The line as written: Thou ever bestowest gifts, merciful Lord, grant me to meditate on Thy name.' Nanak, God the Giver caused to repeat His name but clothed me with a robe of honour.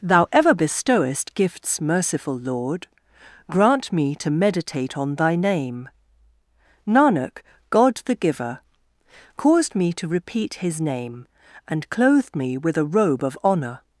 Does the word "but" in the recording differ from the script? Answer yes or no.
yes